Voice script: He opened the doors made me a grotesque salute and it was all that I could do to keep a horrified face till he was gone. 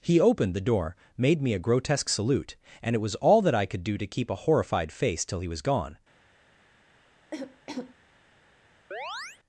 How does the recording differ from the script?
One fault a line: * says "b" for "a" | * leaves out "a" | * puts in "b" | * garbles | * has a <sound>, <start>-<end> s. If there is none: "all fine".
* says "door" for "doors"
* has a cough, 7.3-8.0 s
* has a chirp, 8.9-9.4 s